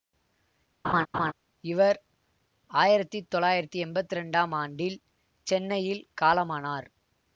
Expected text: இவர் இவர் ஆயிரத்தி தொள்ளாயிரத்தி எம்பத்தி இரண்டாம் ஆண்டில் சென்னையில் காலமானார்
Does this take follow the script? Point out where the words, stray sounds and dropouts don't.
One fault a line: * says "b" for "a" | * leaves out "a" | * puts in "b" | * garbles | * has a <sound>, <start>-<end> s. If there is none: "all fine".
* has a laugh, 0.8-1.3 s
* leaves out "இவர்"